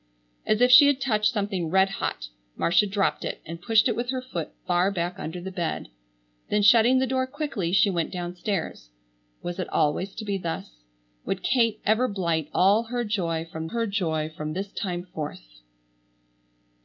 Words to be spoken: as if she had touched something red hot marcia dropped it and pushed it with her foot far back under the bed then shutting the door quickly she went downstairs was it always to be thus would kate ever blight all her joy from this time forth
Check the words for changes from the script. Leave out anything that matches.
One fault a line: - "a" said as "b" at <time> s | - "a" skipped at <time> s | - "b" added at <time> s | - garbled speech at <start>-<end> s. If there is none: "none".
- "her joy from" added at 13.7 s